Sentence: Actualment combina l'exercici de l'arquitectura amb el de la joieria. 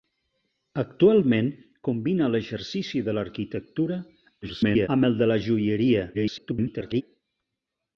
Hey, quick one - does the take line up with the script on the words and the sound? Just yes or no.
no